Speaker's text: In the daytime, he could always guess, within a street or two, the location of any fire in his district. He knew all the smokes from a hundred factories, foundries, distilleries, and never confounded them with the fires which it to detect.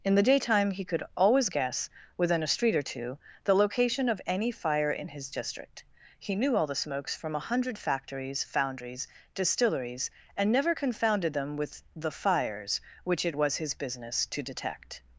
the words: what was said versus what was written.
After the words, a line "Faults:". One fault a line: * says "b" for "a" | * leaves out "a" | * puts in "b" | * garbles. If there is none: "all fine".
In the daytime, he could always guess, within a street or two, the location of any fire in his district. He knew all the smokes from a hundred factories, foundries, distilleries, and never confounded them with the fires which it was his business to detect.
Faults:
* puts in "was his business"